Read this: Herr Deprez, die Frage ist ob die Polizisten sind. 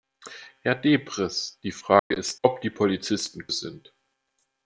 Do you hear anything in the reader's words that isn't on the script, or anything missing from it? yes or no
no